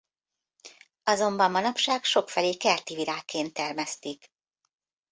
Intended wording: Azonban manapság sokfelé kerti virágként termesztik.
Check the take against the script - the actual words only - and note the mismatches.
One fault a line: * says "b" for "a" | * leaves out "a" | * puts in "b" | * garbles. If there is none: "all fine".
all fine